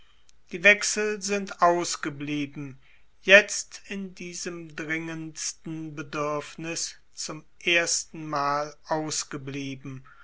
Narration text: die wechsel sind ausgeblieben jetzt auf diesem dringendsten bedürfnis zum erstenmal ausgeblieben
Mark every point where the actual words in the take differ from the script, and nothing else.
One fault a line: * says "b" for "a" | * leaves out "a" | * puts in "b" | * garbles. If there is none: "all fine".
* says "in" for "auf"